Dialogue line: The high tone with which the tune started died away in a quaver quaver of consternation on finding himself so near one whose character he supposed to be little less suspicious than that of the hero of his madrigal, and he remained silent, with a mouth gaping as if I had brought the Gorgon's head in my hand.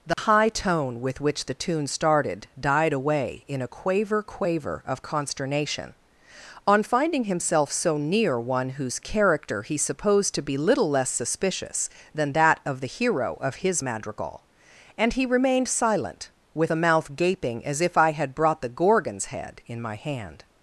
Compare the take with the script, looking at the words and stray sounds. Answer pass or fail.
fail